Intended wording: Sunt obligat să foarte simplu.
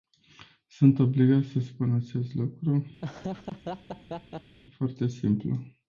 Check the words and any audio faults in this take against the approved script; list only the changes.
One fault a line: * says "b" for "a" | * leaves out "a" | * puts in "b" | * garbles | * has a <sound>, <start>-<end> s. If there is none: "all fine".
* puts in "spun acest lucru"
* has a laugh, 3.0-4.6 s